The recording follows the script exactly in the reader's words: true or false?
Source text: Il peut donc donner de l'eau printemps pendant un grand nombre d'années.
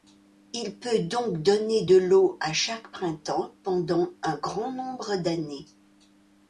false